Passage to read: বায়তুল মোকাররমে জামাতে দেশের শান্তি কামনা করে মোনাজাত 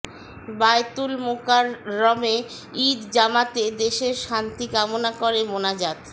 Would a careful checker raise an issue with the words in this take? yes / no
yes